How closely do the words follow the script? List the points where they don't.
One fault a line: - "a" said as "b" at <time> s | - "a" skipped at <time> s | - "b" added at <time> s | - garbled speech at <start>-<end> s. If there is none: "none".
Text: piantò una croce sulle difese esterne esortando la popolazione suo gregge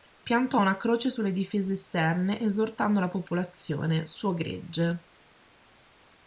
none